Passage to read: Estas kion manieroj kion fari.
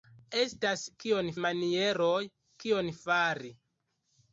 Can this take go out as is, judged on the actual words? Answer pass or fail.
pass